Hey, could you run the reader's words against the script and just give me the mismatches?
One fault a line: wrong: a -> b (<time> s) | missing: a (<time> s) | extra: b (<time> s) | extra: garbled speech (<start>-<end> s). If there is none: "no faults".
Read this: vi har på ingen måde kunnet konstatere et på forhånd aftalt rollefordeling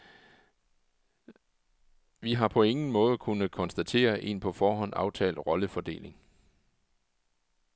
wrong: et -> en (4.2 s)